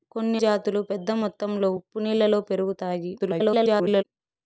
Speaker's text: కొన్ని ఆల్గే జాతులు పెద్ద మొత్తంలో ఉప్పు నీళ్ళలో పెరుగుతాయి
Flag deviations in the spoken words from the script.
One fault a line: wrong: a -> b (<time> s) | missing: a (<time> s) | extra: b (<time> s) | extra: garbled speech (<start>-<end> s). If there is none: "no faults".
missing: ఆల్గే (0.4 s)
extra: garbled speech (3.2-4.0 s)